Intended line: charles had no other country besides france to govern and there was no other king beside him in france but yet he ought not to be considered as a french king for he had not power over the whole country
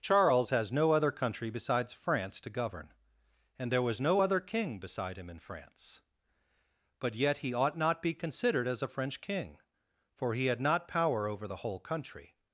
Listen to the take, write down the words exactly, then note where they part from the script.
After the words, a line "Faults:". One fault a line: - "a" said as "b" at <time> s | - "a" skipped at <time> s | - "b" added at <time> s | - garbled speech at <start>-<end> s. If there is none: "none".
charles has no other country besides france to govern and there was no other king beside him in france but yet he ought not be considered as a french king for he had not power over the whole country
Faults:
- "had" said as "has" at 0.5 s
- "to" skipped at 8.0 s